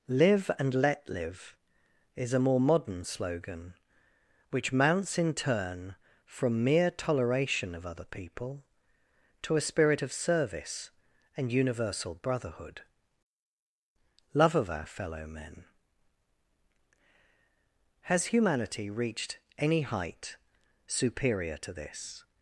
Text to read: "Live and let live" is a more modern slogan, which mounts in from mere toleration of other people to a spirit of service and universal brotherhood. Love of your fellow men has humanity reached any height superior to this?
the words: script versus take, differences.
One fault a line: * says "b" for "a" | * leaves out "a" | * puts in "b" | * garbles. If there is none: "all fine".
* puts in "turn"
* says "our" for "your"